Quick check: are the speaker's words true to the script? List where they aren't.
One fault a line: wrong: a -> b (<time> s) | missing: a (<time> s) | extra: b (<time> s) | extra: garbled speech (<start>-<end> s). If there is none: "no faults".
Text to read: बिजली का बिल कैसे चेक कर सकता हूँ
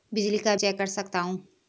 missing: बिल कैसे (0.6 s)